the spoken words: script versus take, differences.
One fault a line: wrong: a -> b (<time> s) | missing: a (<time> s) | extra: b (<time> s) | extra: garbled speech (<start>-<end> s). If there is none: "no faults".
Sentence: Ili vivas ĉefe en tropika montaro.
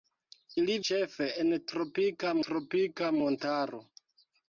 missing: vivas (0.8 s)
extra: tropika (2.5 s)